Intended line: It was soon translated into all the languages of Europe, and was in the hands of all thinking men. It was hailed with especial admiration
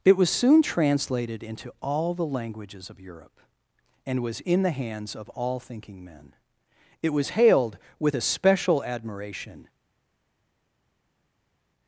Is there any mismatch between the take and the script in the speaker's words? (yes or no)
no